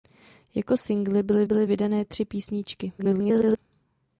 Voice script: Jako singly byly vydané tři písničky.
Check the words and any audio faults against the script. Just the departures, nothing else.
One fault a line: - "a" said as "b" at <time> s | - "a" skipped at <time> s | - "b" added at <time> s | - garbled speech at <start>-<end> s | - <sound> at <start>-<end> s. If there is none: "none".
- "byly" added at 1.4 s
- garbled speech at 3.0-3.6 s